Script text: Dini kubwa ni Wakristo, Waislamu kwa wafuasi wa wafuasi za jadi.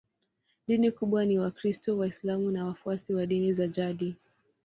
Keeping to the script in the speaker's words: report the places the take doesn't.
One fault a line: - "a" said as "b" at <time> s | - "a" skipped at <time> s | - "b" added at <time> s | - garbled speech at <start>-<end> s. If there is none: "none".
- "kwa" said as "na" at 2.5 s
- "wafuasi" said as "dini" at 3.2 s